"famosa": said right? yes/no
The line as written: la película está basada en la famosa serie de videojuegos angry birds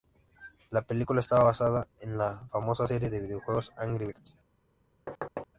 yes